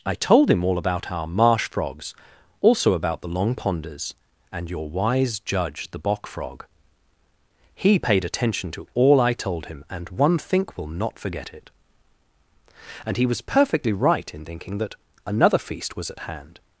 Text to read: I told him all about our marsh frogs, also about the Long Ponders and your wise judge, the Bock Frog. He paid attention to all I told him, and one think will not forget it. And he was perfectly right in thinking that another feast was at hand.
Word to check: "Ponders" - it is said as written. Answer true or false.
true